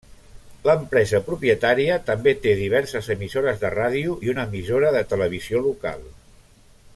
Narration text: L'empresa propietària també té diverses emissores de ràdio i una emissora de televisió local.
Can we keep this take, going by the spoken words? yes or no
yes